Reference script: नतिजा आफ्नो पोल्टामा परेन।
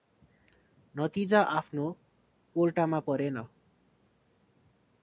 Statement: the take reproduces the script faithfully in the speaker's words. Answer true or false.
true